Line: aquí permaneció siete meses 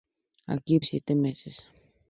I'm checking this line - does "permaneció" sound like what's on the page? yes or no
no